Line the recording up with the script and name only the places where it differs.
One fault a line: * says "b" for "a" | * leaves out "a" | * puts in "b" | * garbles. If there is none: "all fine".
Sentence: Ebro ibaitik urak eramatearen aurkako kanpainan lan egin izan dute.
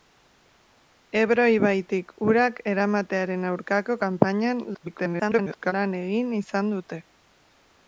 * garbles